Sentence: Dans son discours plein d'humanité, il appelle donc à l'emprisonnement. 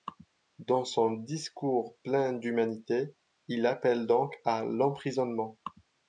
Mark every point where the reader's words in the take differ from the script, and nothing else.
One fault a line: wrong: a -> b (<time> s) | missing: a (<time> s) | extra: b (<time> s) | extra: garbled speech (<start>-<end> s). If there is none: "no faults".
no faults